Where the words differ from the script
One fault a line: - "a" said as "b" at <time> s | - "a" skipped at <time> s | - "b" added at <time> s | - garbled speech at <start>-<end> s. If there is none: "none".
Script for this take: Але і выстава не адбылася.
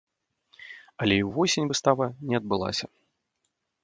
- "ўвосень" added at 1.3 s